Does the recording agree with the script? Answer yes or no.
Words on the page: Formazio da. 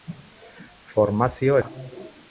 yes